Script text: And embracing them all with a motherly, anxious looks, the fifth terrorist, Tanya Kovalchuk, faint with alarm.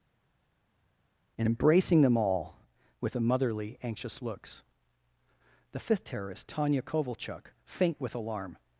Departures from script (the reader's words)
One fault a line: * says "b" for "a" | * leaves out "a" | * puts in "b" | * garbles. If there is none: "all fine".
all fine